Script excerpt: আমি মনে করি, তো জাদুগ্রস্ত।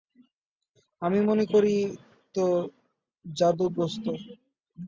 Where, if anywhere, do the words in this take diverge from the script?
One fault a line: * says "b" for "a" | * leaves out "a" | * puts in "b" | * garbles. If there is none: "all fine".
all fine